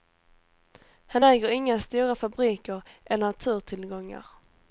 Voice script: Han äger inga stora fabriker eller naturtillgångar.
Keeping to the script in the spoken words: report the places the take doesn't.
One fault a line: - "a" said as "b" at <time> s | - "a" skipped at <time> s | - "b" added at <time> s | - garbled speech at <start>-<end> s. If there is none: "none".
none